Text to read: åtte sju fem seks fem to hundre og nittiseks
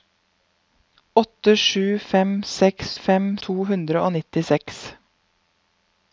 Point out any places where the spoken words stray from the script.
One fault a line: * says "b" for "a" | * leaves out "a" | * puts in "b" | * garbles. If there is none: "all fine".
all fine